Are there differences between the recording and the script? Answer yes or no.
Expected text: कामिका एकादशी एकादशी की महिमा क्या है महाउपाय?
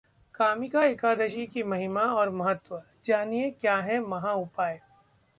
yes